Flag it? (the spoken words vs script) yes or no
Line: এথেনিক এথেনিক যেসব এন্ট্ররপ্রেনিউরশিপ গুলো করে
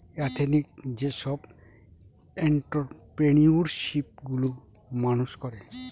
yes